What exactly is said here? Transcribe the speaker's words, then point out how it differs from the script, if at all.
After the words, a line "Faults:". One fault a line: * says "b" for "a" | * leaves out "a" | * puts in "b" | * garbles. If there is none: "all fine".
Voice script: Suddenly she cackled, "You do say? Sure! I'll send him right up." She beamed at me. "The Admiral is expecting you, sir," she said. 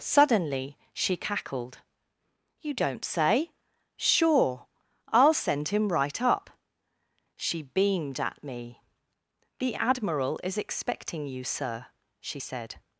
Suddenly she cackled, "You don't say? Sure! I'll send him right up." She beamed at me. "The Admiral is expecting you, sir," she said.
Faults:
* says "don't" for "do"